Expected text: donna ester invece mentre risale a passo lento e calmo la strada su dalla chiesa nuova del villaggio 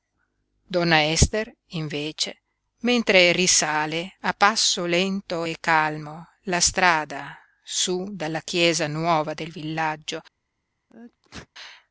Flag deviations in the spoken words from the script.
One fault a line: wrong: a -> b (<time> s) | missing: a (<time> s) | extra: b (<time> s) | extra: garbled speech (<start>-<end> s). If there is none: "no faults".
no faults